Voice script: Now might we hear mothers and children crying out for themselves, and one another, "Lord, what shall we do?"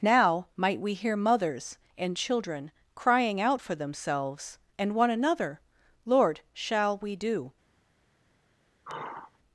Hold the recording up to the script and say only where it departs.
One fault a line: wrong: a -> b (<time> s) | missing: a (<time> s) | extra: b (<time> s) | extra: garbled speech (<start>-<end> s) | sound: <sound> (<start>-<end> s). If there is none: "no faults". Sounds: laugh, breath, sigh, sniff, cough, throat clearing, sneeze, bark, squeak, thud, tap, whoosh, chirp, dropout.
missing: what (6.4 s)
sound: sigh (8.8-9.4 s)